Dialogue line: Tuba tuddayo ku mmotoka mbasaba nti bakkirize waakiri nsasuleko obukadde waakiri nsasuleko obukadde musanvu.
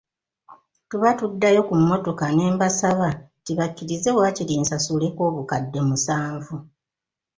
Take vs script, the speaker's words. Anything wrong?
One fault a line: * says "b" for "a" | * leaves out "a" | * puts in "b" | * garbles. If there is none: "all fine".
* puts in "ne"
* leaves out "waakiri nsasuleko obukadde"